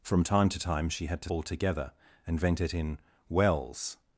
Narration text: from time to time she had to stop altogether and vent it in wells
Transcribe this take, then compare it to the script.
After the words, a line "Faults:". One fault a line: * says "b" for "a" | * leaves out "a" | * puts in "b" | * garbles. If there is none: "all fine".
from time to time she had to altogether and vent it in wells
Faults:
* leaves out "stop"